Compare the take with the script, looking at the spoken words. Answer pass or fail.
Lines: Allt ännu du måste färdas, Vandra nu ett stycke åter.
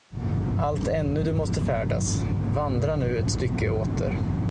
pass